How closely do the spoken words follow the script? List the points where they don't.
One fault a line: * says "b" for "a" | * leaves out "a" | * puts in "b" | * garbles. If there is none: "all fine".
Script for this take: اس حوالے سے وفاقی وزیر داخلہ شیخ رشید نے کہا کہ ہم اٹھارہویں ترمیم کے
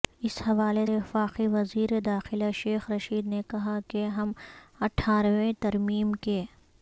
* leaves out "سے"